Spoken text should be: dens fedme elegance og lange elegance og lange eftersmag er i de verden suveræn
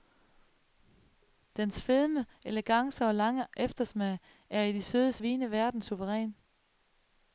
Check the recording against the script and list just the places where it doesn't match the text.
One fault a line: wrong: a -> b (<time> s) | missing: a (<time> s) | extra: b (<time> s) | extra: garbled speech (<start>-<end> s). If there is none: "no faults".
missing: elegance og lange (3.5 s)
extra: søde vines (4.8 s)